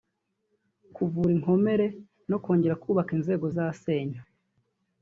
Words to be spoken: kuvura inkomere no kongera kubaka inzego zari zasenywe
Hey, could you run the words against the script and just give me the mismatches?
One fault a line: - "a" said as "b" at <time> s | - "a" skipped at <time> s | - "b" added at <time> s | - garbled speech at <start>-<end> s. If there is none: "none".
- "zari" skipped at 3.4 s